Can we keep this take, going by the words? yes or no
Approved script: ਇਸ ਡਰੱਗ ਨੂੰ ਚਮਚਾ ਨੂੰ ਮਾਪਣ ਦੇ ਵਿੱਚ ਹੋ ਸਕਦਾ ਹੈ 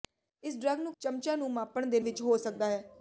yes